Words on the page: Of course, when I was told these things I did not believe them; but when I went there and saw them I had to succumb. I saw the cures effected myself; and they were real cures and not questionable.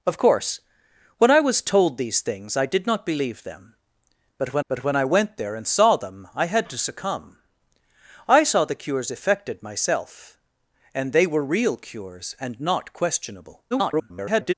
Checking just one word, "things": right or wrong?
right